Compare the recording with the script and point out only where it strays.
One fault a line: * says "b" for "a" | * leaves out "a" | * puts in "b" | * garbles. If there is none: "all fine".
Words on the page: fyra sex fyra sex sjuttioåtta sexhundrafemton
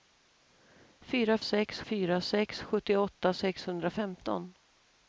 all fine